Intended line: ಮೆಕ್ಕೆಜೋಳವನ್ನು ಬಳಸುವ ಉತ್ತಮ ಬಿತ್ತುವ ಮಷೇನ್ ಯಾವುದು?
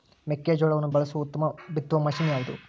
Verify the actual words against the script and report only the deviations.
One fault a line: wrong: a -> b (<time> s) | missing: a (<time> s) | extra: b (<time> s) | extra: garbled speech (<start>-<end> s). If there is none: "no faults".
no faults